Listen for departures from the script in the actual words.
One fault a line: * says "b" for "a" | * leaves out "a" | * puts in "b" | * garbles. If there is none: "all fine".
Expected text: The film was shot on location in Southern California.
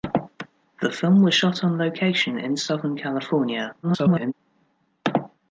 * garbles